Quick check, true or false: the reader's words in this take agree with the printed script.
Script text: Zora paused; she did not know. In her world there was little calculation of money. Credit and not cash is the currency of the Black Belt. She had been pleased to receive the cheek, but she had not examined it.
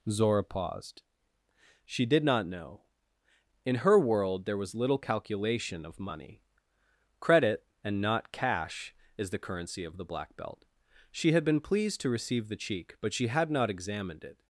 true